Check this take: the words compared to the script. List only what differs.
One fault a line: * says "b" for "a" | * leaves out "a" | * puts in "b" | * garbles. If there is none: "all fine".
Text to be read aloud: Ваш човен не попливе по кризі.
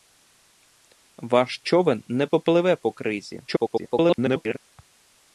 * garbles